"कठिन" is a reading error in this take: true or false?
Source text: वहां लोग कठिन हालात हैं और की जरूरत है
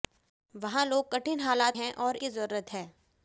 false